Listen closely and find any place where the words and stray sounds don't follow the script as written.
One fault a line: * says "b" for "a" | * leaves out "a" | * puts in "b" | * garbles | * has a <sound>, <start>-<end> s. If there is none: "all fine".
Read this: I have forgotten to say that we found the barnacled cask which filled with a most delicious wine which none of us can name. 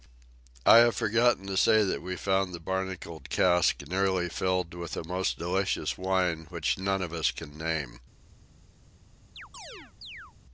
* says "nearly" for "which"
* has a chirp, 9.4-10.3 s